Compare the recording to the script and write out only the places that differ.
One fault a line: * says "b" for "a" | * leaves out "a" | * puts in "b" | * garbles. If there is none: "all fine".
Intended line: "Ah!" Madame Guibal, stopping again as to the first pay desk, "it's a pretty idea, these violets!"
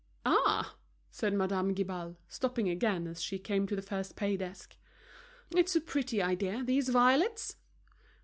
* puts in "said"
* puts in "she came"